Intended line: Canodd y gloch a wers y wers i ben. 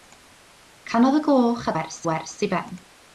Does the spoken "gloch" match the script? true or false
true